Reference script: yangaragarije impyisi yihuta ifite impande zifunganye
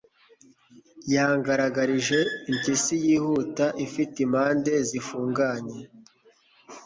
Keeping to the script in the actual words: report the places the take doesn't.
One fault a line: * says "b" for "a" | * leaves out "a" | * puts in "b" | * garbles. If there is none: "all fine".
all fine